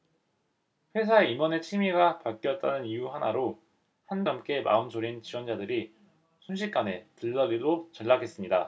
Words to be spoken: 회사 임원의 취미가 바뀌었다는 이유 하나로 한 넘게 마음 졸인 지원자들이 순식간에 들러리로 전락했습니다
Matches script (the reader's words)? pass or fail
pass